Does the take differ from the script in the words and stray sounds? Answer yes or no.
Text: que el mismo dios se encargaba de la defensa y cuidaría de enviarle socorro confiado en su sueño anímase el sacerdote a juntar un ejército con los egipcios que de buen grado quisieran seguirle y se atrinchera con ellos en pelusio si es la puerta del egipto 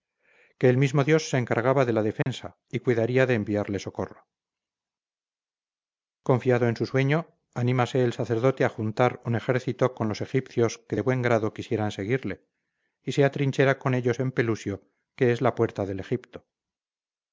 yes